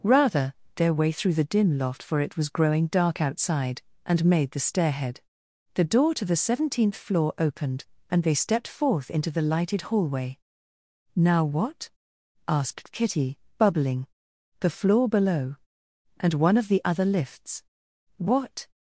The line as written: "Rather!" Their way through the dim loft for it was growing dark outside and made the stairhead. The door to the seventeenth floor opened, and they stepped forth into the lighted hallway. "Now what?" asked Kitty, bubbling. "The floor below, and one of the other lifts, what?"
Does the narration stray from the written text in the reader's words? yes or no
no